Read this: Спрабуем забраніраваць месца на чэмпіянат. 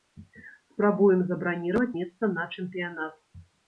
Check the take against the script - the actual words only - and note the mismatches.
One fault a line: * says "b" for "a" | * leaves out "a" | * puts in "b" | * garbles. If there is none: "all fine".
all fine